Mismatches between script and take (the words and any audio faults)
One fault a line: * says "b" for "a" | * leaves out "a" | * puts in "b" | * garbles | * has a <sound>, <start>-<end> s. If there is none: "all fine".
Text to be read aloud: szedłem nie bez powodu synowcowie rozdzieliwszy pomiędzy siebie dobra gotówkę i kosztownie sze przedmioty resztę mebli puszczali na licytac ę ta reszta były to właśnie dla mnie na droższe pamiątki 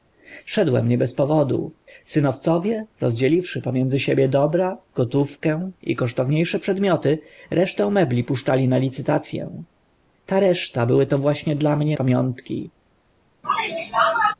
* leaves out "na droższe"
* has a sneeze, 13.4-14.3 s